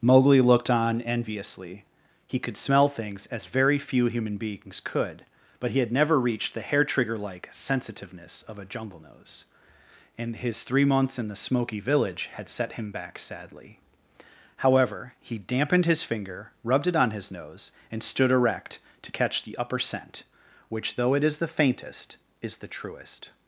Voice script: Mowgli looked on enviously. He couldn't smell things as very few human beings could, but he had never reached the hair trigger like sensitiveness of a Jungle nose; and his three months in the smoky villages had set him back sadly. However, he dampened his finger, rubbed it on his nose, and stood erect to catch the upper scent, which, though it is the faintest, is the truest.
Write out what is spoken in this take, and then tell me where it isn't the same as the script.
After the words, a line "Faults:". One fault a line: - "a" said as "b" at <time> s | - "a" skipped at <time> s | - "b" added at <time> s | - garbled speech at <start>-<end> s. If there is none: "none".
Mowgli looked on enviously. He could smell things as very few human beings could, but he had never reached the hair trigger like sensitiveness of a Jungle nose; and his three months in the smoky village had set him back sadly. However, he dampened his finger, rubbed it on his nose, and stood erect to catch the upper scent, which, though it is the faintest, is the truest.
Faults:
- "couldn't" said as "could" at 2.4 s
- "villages" said as "village" at 11.8 s